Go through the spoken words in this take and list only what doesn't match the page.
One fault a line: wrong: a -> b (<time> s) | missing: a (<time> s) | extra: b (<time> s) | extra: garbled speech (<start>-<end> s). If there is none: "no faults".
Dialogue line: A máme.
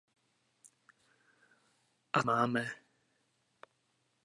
no faults